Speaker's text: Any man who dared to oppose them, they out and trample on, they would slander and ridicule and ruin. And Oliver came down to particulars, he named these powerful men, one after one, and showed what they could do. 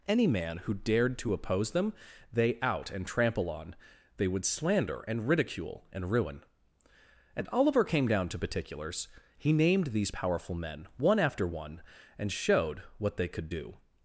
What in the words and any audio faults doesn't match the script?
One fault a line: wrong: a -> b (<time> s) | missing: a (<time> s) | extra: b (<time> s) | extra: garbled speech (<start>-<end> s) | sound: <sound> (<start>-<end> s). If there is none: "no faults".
no faults